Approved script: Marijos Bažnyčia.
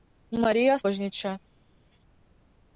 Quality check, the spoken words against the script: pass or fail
pass